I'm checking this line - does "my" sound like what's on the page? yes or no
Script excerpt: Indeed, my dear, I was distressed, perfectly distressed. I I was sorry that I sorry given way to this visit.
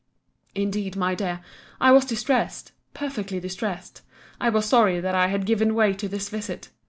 yes